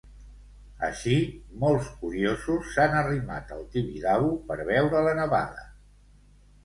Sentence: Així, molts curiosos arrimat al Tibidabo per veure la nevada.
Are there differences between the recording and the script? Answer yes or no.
yes